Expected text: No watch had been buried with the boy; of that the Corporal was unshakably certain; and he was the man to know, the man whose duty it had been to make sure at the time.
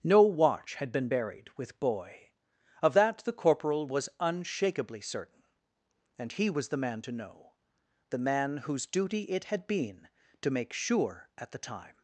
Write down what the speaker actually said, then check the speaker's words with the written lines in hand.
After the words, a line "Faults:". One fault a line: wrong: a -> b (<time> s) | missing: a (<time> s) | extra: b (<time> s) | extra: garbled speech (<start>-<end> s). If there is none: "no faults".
No watch had been buried with boy; of that the Corporal was unshakably certain; and he was the man to know, the man whose duty it had been to make sure at the time.
Faults:
missing: the (1.8 s)